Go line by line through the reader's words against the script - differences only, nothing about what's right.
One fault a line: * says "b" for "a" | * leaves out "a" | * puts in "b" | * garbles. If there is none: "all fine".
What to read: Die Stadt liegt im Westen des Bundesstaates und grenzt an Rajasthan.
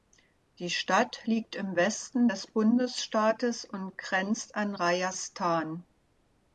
all fine